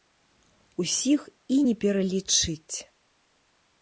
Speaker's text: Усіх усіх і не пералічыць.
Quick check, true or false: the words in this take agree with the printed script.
false